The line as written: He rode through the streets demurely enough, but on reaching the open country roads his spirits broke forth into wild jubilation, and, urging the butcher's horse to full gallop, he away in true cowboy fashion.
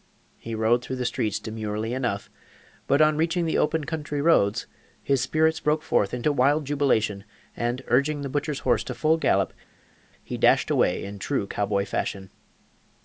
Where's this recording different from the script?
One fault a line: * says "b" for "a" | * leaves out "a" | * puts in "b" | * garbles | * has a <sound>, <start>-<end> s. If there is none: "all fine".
* puts in "dashed"